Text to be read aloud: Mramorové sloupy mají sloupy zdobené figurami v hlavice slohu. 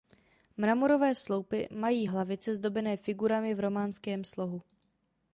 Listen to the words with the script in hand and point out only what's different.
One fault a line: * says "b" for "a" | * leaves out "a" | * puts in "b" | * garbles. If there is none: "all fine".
* says "hlavice" for "sloupy"
* says "románském" for "hlavice"